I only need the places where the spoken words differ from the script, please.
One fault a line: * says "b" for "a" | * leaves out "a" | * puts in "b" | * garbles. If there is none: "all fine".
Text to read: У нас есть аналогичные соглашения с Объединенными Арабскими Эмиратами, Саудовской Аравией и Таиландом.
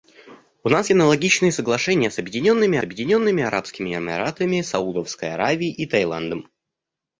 * leaves out "есть"
* puts in "Объединенными"